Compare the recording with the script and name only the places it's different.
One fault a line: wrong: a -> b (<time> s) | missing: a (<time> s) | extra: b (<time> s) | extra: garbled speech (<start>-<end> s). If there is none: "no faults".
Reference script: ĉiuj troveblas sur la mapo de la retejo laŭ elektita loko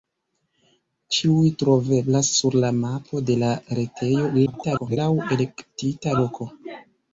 extra: garbled speech (4.5-5.0 s)